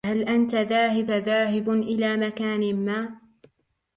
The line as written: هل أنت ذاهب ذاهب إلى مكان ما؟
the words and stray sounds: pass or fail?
pass